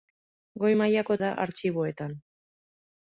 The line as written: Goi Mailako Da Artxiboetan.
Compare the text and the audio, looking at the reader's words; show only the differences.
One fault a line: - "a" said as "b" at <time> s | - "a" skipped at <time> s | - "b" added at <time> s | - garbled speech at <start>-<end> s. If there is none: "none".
none